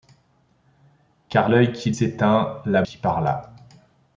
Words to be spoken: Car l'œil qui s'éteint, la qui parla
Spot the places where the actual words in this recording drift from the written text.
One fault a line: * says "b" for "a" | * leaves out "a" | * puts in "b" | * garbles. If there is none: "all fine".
all fine